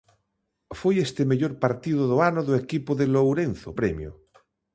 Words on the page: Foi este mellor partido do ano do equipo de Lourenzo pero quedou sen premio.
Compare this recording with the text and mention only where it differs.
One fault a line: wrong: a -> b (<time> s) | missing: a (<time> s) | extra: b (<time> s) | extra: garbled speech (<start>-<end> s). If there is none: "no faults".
missing: pero quedou sen (3.7 s)